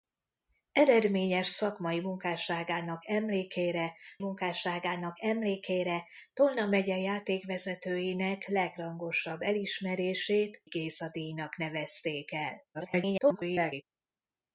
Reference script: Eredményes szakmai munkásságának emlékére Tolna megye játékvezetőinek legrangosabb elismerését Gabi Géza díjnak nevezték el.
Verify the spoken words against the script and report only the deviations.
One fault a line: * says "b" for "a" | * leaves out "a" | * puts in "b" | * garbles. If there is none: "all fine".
* puts in "munkásságának emlékére"
* leaves out "Gabi"
* garbles